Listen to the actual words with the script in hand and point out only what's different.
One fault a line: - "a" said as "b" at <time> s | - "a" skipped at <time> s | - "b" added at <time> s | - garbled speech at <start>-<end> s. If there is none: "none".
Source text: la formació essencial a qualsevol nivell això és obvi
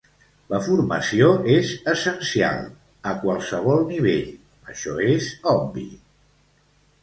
- "és" added at 1.6 s